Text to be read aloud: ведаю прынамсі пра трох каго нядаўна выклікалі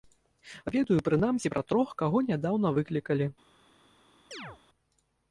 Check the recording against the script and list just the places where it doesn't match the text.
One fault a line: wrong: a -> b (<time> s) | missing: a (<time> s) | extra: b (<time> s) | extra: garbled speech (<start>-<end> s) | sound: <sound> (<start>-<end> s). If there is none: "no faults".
sound: chirp (4.3-4.6 s)